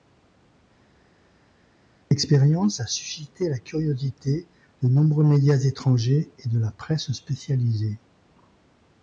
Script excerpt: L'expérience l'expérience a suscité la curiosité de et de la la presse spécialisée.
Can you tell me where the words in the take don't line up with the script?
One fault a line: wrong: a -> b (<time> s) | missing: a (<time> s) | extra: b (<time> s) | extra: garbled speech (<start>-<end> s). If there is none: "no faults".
missing: l'expérience (2.8 s)
extra: nombreux médias étrangers (4.9 s)
missing: la (6.7 s)